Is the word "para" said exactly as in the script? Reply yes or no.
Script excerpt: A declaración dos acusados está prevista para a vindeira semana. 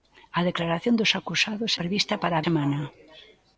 yes